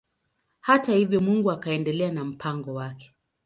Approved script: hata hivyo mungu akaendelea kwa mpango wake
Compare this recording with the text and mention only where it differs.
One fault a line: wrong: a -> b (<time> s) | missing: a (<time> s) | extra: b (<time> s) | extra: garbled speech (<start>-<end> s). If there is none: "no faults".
wrong: kwa -> na (2.1 s)